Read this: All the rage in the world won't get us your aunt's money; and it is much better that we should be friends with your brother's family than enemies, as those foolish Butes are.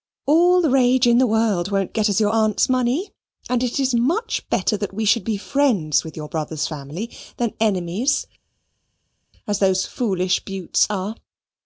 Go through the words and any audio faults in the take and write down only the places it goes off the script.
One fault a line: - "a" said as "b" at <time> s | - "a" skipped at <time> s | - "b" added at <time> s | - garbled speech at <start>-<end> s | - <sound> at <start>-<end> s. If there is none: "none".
none